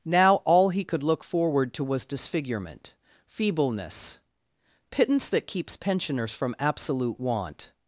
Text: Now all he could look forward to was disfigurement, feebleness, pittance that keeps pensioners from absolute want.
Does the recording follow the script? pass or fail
pass